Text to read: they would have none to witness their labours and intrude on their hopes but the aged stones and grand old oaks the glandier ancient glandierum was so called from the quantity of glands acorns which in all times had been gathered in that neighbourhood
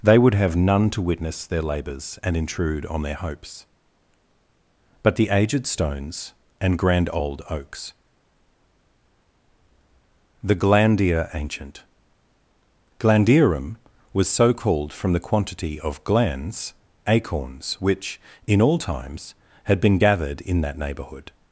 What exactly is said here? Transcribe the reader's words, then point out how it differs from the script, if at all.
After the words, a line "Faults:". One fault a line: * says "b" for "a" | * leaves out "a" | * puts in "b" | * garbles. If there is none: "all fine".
they would have none to witness their labours and intrude on their hopes but the aged stones and grand old oaks the glandier ancient glandierum was so called from the quantity of glands acorns which in all times had been gathered in that neighbourhood
Faults:
all fine